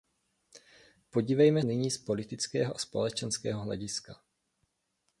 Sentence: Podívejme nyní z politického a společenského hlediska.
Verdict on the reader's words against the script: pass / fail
pass